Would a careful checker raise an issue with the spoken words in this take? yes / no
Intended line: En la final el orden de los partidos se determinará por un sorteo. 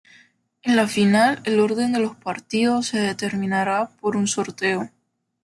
no